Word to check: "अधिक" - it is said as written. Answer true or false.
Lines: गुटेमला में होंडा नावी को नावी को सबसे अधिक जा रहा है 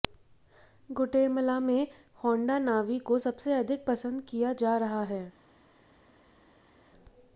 false